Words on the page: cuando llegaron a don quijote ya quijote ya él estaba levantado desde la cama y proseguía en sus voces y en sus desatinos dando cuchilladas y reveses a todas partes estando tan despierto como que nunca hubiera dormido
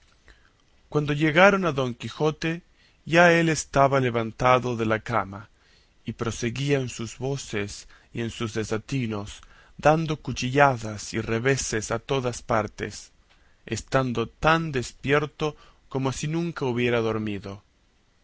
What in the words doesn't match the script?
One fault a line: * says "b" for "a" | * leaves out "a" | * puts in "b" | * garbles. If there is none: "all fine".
* leaves out "quijote ya"
* says "de" for "desde"
* says "si" for "que"